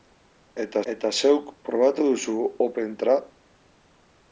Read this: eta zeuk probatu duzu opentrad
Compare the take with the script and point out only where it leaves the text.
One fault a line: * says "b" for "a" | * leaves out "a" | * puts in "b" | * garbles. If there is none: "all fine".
* puts in "eta"